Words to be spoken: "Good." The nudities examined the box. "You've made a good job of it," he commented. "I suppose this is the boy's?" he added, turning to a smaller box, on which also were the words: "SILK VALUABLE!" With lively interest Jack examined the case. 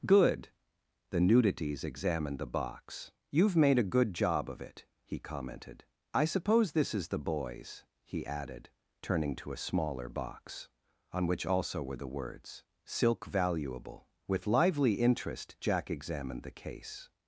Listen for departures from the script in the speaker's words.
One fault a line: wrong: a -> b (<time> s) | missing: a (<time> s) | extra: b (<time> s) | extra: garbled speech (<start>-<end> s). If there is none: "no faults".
no faults